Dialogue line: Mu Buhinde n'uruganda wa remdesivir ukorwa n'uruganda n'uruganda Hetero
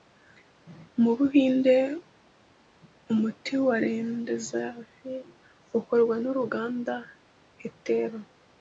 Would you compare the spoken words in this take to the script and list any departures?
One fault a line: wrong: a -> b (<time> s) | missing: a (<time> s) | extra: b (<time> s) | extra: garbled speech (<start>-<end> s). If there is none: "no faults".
wrong: n'uruganda -> umuti (3.1 s)
missing: n'uruganda (6.9 s)